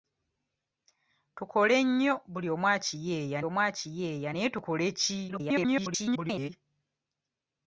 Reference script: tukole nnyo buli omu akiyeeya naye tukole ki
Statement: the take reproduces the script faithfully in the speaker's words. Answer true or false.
false